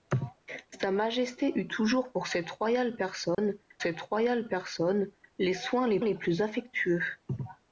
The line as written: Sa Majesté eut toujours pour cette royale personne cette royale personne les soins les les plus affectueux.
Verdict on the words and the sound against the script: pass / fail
fail